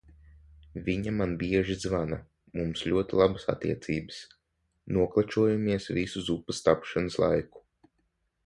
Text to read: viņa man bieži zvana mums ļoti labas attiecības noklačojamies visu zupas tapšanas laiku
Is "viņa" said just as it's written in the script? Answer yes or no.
yes